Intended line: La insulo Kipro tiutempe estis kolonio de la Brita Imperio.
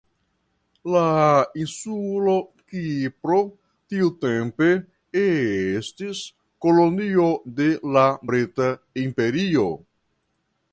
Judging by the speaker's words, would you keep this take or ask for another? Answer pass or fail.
pass